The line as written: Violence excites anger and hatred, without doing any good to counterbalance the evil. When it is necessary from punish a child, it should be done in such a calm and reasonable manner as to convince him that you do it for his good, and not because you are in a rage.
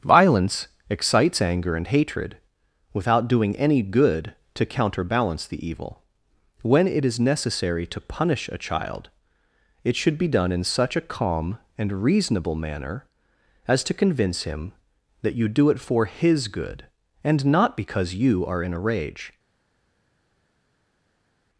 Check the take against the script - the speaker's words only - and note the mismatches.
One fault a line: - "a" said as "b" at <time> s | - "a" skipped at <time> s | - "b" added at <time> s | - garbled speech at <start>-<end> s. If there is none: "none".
- "from" said as "to" at 7.9 s